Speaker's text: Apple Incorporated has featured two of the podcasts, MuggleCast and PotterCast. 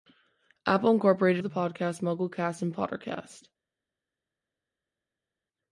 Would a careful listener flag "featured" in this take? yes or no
yes